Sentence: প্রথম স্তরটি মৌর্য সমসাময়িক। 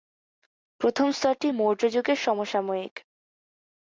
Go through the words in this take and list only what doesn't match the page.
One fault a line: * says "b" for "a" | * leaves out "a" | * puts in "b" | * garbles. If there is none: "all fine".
* puts in "যুগের"